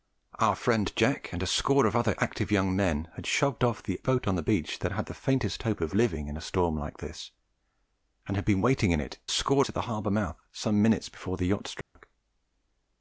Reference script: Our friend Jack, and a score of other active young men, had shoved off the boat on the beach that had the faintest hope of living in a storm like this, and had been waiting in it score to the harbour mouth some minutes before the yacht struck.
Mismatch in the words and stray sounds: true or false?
true